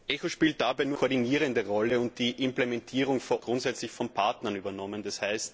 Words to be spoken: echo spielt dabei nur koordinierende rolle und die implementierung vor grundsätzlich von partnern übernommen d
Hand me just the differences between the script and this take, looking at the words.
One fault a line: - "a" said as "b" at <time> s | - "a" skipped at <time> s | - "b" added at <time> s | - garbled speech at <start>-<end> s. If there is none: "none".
none